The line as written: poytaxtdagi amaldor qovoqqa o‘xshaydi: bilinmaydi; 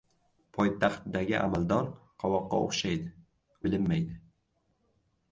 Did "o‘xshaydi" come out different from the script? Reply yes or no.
no